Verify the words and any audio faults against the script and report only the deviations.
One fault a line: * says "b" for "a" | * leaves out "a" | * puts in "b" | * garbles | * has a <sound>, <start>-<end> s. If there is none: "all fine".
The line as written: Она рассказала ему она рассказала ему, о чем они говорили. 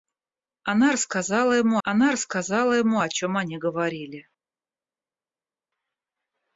all fine